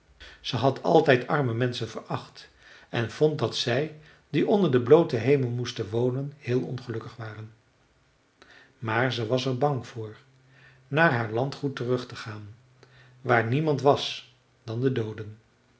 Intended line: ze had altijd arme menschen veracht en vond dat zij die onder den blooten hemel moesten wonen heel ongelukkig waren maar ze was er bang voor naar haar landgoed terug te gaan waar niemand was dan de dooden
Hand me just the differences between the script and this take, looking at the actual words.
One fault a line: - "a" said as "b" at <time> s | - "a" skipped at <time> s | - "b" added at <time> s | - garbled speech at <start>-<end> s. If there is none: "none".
none